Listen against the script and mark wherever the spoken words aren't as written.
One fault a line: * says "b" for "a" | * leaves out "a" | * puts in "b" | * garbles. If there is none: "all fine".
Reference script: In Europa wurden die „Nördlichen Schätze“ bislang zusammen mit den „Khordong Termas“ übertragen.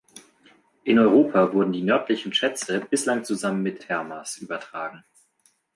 * leaves out "den Khordong"